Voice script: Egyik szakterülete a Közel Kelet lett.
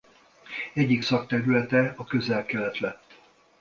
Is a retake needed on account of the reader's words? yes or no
no